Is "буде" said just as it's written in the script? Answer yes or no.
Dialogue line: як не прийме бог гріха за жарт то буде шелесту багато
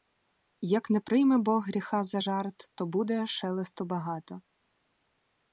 yes